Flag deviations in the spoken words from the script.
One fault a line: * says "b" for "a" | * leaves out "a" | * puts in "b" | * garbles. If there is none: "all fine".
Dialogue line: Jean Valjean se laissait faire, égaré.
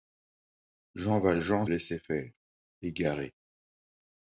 * leaves out "se"